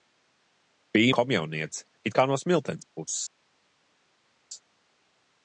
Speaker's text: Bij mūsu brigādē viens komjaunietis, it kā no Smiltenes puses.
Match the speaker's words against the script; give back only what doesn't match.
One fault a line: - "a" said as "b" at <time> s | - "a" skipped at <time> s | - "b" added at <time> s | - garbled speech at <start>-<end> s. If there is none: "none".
- "mūsu brigādē viens" skipped at 1.1 s